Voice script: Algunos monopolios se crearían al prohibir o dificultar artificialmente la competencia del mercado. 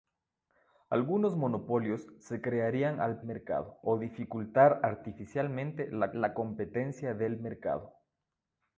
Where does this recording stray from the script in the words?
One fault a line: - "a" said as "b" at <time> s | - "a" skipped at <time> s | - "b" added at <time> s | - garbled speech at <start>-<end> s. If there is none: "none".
- "prohibir" said as "mercado" at 3.2 s
- "la" added at 6.1 s